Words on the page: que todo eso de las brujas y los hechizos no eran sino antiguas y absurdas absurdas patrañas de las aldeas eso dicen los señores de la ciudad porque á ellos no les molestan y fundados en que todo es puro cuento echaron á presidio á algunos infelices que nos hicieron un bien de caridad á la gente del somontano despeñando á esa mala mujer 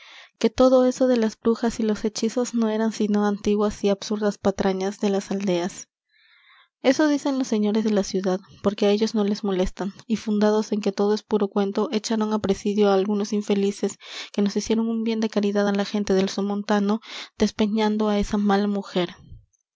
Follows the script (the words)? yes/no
no